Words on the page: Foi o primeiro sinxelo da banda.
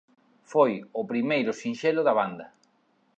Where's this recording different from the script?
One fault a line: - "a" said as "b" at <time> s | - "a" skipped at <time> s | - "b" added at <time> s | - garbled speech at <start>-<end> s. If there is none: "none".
none